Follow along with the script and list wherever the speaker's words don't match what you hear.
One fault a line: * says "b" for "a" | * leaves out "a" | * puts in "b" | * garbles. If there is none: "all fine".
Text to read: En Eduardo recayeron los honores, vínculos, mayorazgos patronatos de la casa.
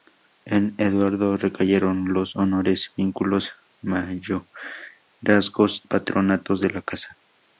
all fine